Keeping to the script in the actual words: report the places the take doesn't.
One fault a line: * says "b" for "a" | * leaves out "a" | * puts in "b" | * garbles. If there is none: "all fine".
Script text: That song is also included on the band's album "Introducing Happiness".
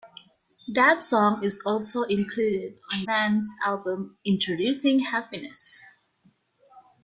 * leaves out "the"